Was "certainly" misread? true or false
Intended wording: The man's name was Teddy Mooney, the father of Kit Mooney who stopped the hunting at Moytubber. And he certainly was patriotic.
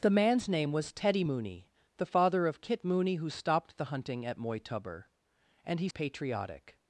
true